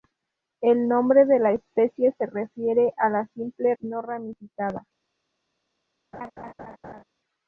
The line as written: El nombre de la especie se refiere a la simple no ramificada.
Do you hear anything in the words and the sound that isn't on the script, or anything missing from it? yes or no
yes